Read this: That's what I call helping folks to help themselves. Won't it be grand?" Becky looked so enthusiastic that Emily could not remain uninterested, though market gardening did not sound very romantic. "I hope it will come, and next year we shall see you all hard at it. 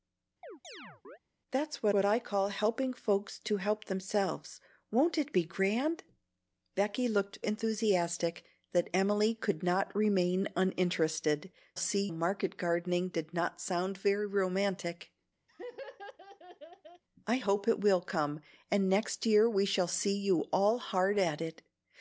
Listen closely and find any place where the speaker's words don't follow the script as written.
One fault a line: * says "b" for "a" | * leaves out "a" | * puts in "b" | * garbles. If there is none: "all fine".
* puts in "what"
* leaves out "so"
* says "see" for "though"